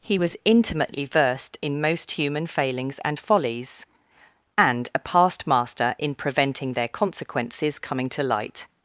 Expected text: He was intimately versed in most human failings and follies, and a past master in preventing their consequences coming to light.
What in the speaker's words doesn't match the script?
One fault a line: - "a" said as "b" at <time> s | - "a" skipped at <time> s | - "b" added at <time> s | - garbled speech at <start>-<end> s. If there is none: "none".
none